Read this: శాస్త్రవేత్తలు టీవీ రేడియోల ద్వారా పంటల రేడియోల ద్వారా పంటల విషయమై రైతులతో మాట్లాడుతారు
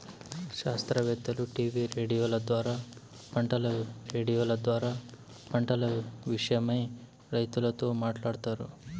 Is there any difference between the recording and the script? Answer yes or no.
no